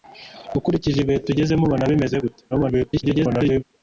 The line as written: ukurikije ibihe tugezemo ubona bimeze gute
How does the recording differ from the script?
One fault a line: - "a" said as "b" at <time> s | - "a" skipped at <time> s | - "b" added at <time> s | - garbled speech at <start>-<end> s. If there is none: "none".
- garbled speech at 2.5-3.6 s